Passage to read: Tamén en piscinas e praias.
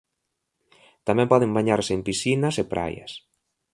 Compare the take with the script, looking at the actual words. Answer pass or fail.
fail